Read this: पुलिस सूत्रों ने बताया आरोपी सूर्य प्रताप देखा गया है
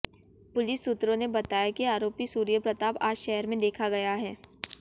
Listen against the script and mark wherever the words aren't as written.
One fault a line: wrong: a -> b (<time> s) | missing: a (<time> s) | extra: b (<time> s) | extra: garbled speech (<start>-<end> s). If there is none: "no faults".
extra: कि (1.7 s)
extra: आज शहर में (3.0 s)